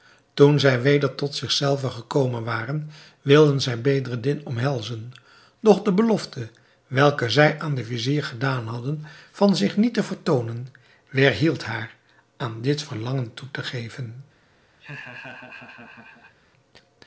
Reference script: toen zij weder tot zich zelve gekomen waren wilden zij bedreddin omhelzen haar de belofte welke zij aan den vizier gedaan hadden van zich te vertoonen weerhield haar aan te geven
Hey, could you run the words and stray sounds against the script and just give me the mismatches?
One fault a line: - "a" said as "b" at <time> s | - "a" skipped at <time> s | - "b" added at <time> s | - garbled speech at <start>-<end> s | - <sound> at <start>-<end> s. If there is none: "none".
- "haar" said as "doch" at 5.6 s
- "niet" added at 9.8 s
- "dit verlangen toe" added at 12.6 s
- laugh at 14.8-16.3 s